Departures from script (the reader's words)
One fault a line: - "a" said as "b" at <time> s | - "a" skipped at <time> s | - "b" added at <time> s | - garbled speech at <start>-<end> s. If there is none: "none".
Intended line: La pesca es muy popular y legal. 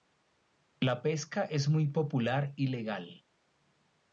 none